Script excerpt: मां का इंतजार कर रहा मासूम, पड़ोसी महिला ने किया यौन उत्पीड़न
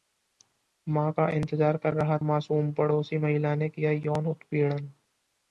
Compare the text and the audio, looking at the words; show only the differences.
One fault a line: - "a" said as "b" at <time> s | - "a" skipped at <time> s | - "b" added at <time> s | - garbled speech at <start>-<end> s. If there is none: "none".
none